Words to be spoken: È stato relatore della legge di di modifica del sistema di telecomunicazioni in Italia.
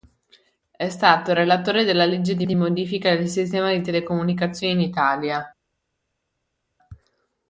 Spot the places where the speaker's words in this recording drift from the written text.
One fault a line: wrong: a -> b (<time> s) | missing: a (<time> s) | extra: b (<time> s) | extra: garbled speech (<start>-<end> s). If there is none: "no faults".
no faults